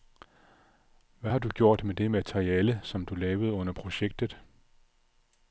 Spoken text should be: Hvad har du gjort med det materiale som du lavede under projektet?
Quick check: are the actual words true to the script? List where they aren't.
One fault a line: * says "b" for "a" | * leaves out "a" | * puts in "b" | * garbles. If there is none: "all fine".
all fine